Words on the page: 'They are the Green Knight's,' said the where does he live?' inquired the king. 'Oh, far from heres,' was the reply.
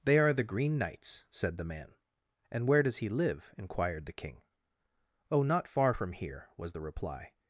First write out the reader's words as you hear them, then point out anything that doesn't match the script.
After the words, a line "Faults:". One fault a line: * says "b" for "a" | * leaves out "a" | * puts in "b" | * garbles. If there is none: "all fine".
'They are the Green Knight's,' said the man. 'And where does he live?' inquired the king. 'Oh, not far from here,' was the reply.
Faults:
* puts in "man And"
* puts in "not"
* says "here" for "heres"